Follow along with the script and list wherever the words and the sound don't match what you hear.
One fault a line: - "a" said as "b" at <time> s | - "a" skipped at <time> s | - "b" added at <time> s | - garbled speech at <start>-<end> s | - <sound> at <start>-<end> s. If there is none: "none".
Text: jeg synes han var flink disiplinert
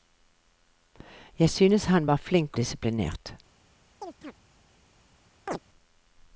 - chirp at 4.0-4.3 s
- chirp at 5.5-5.6 s